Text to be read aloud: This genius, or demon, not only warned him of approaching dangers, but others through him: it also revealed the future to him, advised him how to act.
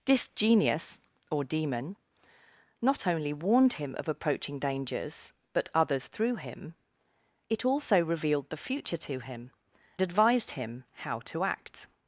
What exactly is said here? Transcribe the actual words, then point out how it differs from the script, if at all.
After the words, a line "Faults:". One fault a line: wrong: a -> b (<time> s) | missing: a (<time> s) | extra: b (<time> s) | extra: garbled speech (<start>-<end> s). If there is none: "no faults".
This genius, or demon, not only warned him of approaching dangers, but others through him: it also revealed the future to him, advised him how to act.
Faults:
no faults